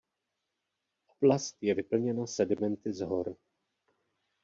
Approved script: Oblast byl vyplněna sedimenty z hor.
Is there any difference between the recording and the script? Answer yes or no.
yes